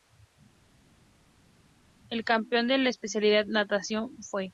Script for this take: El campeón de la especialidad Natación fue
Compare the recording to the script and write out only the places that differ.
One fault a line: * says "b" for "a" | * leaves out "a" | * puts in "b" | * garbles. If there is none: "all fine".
all fine